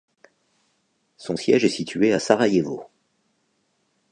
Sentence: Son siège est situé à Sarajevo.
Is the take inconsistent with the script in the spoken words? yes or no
no